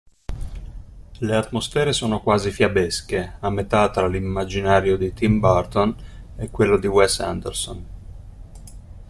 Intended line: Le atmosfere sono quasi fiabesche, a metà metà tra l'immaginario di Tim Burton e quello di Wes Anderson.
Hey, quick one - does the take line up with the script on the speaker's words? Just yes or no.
no